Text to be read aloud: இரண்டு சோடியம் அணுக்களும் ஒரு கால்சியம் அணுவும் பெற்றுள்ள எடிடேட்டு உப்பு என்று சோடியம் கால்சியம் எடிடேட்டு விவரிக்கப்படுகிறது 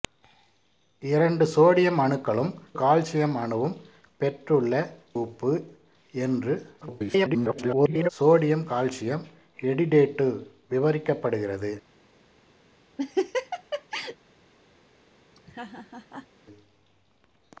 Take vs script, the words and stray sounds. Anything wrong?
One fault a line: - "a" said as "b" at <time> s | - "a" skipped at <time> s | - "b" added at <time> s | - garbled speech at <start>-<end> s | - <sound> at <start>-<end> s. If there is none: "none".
- "ஒரு" skipped at 2.5 s
- "எடிடேட்டு" skipped at 4.7 s
- garbled speech at 6.8-8.1 s
- laugh at 13.0-14.2 s
- laugh at 15.4-16.3 s